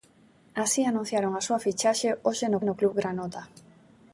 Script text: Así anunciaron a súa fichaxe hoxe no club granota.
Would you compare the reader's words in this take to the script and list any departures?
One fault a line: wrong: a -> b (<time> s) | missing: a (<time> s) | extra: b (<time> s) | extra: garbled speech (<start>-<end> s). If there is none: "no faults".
extra: no (2.6 s)